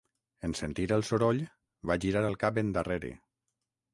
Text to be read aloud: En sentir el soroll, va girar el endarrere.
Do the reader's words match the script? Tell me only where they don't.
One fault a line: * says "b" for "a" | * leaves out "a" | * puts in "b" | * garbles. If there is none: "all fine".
* puts in "cap"